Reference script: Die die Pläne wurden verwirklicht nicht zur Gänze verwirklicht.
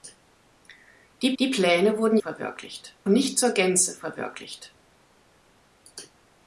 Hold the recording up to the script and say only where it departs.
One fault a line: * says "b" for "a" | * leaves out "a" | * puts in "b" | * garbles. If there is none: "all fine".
all fine